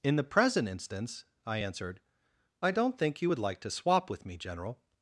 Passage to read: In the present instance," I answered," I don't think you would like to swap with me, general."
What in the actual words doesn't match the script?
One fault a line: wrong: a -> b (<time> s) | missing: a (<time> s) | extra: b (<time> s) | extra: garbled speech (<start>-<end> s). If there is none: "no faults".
no faults